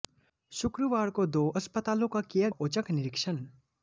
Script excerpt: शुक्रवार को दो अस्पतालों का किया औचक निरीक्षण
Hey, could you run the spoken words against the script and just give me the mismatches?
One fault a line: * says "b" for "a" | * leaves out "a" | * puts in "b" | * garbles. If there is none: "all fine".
all fine